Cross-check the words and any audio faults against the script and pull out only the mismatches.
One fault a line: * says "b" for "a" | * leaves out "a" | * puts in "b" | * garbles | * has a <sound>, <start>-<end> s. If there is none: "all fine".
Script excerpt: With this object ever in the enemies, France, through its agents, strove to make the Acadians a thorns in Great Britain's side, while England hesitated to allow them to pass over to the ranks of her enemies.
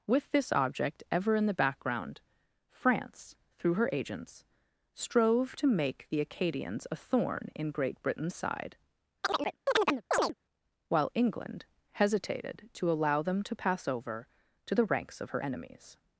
* says "background" for "enemies"
* says "her" for "its"
* says "thorn" for "thorns"
* has a chirp, 9.2-10.3 s